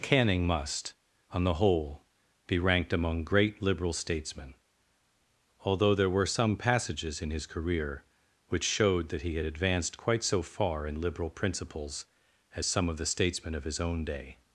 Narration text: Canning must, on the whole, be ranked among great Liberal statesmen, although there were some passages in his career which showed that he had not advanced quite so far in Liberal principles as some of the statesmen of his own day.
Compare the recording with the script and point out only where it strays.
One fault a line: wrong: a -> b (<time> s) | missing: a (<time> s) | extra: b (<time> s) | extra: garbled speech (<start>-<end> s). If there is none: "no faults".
missing: not (9.5 s)